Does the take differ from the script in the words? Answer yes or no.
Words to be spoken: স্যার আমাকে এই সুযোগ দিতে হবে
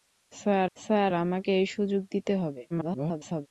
yes